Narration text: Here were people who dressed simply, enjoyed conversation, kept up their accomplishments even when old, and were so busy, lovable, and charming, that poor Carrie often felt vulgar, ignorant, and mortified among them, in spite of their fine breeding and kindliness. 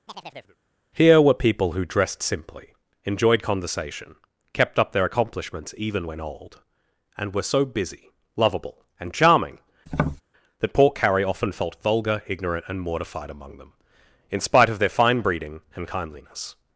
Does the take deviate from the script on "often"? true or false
false